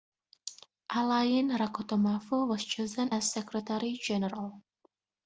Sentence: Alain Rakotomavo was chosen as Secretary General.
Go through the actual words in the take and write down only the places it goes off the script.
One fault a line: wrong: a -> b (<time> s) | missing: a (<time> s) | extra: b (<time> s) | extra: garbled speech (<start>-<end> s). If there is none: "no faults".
no faults